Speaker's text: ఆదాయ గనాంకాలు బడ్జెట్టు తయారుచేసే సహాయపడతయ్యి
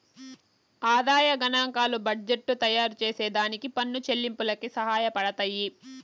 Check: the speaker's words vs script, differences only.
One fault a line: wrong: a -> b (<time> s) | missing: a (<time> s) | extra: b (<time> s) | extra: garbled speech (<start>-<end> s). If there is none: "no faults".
extra: దానికి పన్ను చెల్లింపులకి (3.4 s)